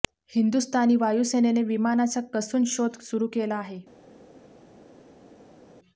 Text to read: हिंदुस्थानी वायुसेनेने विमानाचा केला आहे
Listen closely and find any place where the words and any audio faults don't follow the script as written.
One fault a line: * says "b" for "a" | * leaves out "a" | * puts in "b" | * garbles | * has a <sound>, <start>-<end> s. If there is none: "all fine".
* puts in "कसून शोध सुरू"